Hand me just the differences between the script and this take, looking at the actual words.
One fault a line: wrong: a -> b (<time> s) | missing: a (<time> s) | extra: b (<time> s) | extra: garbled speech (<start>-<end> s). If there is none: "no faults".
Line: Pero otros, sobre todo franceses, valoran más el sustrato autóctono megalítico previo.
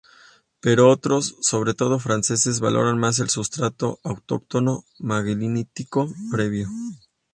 no faults